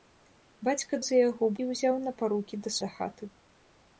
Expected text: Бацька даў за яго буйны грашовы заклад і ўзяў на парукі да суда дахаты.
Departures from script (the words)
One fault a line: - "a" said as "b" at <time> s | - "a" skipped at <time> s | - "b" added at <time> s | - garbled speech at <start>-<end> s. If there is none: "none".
- "даў" skipped at 1.0 s
- "буйны грашовы заклад" skipped at 1.5 s
- "суда" skipped at 2.8 s